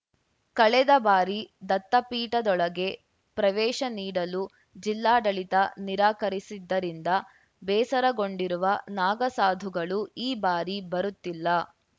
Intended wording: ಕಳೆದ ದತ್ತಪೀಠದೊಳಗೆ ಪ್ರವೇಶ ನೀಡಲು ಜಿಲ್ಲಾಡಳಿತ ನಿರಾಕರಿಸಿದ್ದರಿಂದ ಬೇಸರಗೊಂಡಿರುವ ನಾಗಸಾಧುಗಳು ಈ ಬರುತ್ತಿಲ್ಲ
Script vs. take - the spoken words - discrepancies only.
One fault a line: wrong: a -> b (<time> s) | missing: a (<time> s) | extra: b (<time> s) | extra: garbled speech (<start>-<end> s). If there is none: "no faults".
extra: ಬಾರಿ (1.0 s)
extra: ಬಾರಿ (10.4 s)